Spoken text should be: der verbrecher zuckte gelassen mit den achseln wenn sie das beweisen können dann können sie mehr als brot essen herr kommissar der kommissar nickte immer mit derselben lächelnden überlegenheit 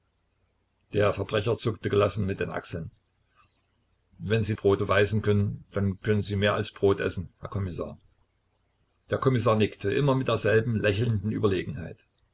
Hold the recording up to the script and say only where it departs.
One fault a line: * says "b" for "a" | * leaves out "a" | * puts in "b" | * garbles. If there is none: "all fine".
* says "brot" for "das"